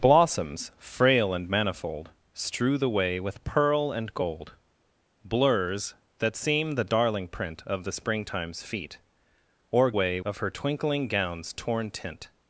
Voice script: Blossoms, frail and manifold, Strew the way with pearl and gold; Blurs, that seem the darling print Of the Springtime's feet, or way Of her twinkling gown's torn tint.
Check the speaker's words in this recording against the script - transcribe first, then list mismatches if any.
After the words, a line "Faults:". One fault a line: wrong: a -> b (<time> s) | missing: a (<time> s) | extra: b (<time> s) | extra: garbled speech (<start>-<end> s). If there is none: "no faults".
Blossoms, frail and manifold, Strew the way with pearl and gold; Blurs, that seem the darling print Of the Springtime's feet, or way Of her twinkling gown's torn tint.
Faults:
no faults